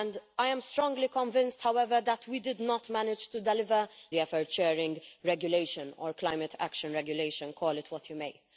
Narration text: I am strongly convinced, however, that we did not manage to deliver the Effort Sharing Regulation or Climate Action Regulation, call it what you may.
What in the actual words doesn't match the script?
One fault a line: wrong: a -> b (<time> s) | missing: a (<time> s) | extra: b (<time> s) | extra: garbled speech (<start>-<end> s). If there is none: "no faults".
no faults